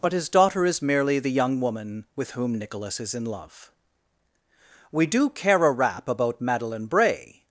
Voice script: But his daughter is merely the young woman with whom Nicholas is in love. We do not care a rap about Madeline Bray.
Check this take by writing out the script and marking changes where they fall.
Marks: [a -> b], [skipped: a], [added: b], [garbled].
But his daughter is merely the young woman with whom Nicholas is in love. We do [skipped: not] care a rap about Madeline Bray.